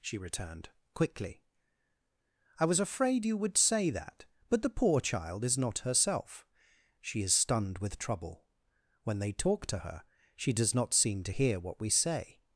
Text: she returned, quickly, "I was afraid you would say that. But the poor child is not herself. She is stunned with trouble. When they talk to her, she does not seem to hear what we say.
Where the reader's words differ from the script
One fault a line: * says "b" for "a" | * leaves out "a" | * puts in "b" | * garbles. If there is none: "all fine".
all fine